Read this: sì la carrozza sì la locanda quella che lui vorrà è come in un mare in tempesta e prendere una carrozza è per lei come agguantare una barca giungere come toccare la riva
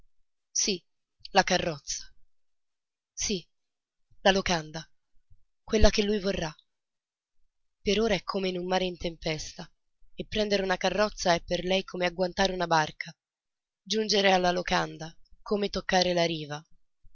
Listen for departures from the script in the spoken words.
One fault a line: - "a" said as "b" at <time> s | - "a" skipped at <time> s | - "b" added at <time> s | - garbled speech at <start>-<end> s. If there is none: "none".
- "per ora" added at 7.8 s
- "alla locanda" added at 14.3 s